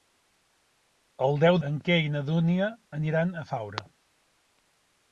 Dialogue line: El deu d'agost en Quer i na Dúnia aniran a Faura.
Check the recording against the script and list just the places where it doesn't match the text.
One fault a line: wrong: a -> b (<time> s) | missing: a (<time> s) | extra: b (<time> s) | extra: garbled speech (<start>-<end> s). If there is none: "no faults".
missing: d'agost (1.6 s)